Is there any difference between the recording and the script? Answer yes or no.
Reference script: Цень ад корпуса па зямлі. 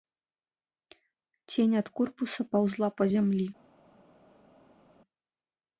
yes